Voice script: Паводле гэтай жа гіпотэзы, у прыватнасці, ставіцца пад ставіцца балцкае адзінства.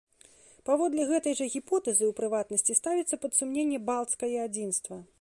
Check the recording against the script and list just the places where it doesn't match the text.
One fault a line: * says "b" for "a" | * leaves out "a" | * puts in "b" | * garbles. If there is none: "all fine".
* says "сумненне" for "ставіцца"